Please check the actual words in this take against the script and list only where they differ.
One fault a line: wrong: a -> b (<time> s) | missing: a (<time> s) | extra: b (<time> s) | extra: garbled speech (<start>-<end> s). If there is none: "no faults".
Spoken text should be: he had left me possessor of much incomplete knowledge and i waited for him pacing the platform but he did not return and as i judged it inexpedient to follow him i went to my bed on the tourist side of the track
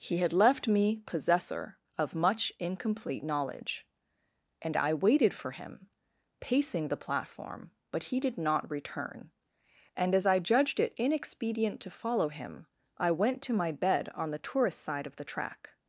no faults